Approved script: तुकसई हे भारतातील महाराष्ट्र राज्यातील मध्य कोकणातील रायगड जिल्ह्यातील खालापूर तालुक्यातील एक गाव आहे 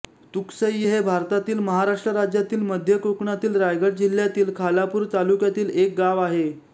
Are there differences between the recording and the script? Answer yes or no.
no